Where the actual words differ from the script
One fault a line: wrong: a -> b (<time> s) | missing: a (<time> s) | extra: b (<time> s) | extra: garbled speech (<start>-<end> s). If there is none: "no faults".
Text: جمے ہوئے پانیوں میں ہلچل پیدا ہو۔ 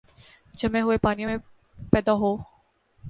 missing: ہلچل (1.4 s)